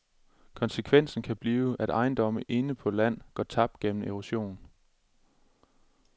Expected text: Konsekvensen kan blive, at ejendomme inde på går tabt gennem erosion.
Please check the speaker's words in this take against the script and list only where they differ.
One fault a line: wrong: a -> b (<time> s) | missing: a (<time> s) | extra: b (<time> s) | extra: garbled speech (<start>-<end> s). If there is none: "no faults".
extra: land (2.9 s)